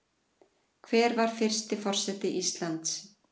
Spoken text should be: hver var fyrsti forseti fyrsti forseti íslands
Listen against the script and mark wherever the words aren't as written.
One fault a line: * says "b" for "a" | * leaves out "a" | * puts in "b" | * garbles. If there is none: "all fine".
* leaves out "fyrsti forseti"